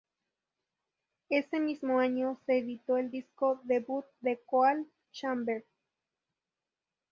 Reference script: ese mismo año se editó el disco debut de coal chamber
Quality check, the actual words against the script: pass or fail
pass